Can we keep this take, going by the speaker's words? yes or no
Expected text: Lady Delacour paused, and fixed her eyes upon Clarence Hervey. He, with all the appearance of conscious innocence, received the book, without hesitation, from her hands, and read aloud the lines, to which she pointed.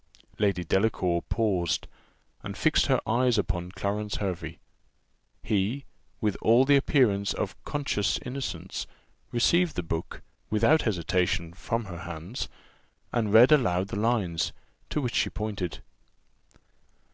yes